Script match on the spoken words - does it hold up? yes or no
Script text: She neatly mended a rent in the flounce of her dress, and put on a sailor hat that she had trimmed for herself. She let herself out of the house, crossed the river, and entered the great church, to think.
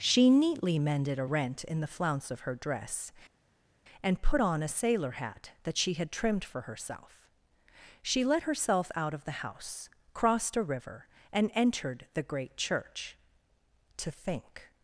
no